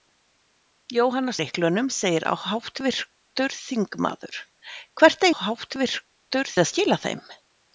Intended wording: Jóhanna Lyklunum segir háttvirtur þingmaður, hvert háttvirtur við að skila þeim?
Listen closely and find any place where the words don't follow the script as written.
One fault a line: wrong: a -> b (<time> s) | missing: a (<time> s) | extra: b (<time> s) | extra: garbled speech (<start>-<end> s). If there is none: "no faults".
no faults